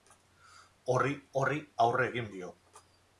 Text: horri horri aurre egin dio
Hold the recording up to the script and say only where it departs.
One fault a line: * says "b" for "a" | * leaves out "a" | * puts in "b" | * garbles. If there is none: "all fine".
all fine